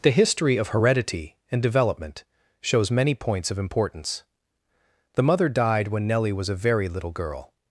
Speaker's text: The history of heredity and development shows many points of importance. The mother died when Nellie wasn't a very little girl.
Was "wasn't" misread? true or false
true